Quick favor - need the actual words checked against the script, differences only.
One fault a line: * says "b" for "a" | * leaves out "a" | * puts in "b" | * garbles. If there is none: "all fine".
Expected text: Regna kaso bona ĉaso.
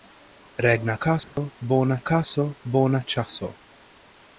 * puts in "kaso bona"